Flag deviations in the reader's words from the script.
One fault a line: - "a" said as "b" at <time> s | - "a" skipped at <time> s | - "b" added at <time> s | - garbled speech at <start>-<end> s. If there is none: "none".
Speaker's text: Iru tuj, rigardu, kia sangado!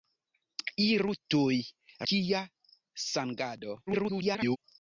- "rigardu" skipped at 1.6 s
- garbled speech at 3.9-4.6 s